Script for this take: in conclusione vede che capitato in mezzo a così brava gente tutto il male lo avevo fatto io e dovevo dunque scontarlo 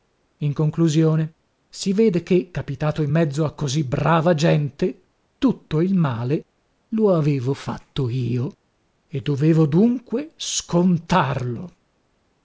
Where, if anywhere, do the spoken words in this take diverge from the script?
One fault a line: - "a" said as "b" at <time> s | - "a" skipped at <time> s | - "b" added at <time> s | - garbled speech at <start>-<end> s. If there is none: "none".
- "si" added at 1.7 s